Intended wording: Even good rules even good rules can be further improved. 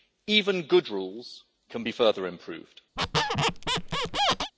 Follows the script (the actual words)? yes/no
no